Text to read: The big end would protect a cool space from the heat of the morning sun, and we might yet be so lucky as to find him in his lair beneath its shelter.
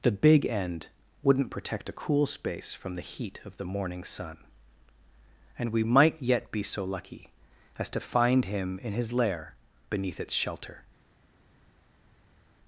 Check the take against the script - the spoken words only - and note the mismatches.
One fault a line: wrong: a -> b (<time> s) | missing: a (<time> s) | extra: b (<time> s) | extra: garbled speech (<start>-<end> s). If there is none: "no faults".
wrong: would -> wouldn't (1.2 s)